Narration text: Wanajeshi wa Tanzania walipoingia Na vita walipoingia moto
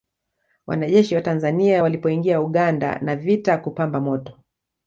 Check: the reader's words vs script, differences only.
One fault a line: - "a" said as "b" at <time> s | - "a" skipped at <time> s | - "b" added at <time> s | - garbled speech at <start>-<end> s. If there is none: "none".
- "Uganda" added at 2.4 s
- "walipoingia" said as "kupamba" at 3.6 s